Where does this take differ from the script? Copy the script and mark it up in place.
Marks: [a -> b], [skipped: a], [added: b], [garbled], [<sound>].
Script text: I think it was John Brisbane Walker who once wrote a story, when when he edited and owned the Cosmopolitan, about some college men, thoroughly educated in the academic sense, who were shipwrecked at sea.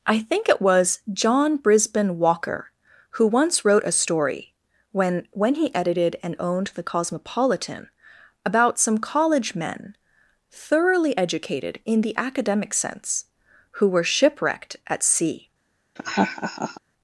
I think it was John Brisbane Walker who once wrote a story, when when he edited and owned the Cosmopolitan, about some college men, thoroughly educated in the academic sense, who were shipwrecked at sea. [laugh]